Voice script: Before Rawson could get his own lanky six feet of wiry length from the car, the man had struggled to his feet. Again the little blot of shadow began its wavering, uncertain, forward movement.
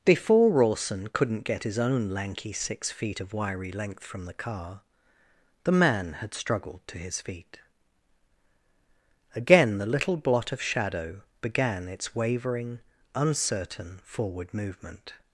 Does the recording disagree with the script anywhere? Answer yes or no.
yes